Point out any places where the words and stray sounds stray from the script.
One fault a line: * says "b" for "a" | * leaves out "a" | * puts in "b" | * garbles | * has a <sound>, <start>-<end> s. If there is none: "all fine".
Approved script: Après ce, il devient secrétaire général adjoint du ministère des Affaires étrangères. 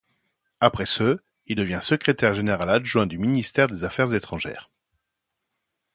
all fine